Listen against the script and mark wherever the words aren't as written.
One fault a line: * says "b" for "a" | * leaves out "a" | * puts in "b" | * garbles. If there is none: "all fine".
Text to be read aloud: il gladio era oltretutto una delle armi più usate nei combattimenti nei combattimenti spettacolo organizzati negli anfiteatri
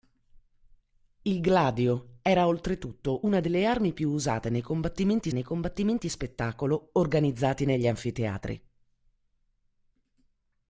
all fine